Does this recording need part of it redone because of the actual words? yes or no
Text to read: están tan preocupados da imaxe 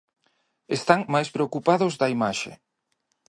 yes